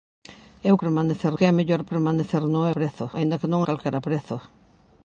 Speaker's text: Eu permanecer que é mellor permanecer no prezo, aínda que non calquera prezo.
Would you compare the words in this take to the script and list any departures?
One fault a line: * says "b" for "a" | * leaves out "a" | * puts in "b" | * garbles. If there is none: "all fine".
all fine